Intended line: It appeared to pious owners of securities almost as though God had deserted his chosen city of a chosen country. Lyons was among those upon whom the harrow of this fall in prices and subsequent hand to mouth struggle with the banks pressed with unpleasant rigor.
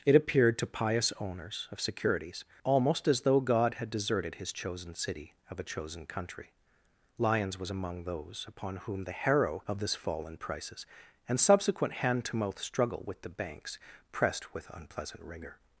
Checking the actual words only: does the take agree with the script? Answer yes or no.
yes